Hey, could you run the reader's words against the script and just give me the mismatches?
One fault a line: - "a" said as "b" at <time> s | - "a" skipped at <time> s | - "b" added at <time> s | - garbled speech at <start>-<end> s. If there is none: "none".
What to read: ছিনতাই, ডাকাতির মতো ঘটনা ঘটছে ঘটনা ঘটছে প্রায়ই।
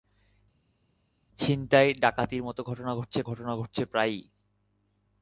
none